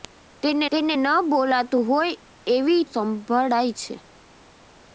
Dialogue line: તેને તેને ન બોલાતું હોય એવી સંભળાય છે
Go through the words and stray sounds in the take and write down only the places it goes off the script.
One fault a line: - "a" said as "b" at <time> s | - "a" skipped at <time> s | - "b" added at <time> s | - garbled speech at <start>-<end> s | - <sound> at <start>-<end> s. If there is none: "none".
none